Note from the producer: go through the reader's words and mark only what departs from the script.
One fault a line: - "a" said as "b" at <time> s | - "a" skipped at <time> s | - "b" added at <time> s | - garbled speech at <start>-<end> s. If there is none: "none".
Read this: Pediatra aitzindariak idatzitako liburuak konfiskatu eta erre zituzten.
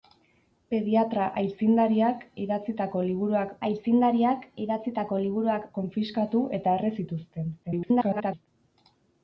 - "aitzindariak idatzitako liburuak" added at 3.7 s
- garbled speech at 7.6-8.5 s